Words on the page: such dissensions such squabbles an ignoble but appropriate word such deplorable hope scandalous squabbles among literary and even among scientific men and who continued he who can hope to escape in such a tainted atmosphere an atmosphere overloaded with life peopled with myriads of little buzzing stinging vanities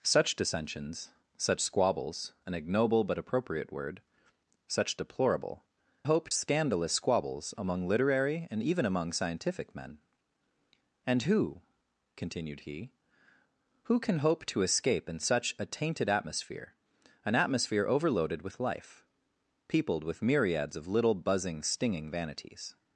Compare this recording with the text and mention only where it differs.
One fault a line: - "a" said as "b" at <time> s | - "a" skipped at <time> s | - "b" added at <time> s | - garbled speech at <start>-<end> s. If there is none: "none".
none